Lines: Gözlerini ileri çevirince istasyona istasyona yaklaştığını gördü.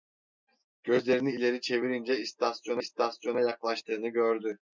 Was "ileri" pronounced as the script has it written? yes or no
yes